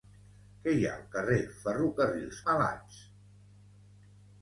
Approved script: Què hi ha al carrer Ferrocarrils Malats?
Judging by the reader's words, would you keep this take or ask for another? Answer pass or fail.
pass